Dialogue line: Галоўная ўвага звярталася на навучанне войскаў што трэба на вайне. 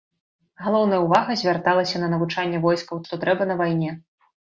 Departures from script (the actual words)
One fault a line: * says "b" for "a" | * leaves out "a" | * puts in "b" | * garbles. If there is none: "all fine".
all fine